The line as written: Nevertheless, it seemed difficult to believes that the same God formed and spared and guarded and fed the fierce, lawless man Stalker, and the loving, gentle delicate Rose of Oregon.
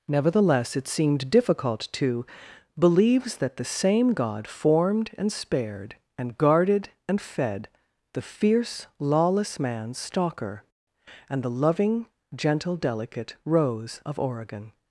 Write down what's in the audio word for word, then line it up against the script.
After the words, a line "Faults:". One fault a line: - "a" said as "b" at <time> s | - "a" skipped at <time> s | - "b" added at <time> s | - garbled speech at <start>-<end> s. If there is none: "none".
Nevertheless, it seemed difficult to believes that the same God formed and spared and guarded and fed the fierce, lawless man Stalker, and the loving, gentle delicate Rose of Oregon.
Faults:
none